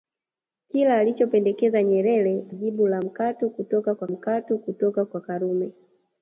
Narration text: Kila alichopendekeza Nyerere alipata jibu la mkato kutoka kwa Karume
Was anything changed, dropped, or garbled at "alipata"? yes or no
yes